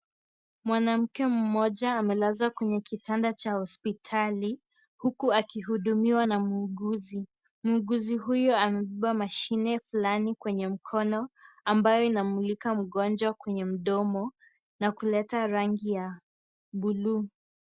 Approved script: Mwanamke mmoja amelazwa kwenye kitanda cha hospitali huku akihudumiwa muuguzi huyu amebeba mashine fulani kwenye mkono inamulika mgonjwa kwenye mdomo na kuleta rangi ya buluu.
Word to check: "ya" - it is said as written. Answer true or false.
true